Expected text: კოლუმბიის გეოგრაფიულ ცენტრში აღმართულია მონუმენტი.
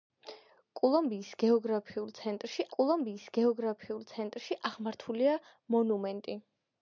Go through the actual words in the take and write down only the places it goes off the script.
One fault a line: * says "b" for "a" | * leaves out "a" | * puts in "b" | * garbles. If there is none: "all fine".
* puts in "კოლუმბიის გეოგრაფიულ ცენტრში"